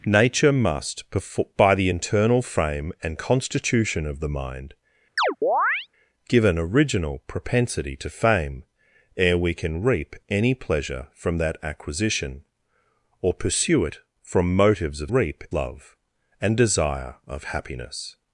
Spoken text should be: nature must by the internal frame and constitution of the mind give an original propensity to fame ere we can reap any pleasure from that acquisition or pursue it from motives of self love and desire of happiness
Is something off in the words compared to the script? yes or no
yes